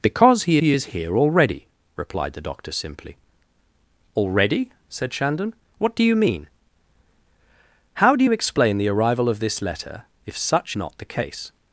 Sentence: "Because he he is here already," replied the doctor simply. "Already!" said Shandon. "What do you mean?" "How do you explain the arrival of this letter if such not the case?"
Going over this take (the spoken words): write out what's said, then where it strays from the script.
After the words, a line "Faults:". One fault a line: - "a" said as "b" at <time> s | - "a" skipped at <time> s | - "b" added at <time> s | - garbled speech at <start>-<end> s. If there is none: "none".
"Because he he is here already," replied the doctor simply. "Already!" said Shandon. "What do you mean?" "How do you explain the arrival of this letter if such not the case?"
Faults:
none